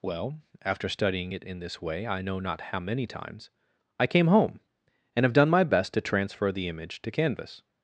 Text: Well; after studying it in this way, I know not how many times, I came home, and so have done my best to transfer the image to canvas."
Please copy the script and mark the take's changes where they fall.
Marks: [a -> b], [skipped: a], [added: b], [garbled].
Well; after studying it in this way, I know not how many times, I came home, and [skipped: so] have done my best to transfer the image to canvas."